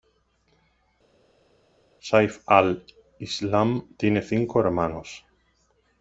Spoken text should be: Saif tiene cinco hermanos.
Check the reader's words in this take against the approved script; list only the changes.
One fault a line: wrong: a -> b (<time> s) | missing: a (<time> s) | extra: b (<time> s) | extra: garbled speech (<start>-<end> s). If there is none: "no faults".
extra: al Islam (2.5 s)